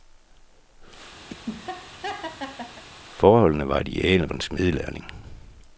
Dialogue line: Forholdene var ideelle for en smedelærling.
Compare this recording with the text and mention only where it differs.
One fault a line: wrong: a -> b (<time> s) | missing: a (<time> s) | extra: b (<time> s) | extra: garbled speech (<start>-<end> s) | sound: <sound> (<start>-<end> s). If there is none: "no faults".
sound: laugh (1.3-2.8 s)
missing: for (4.3 s)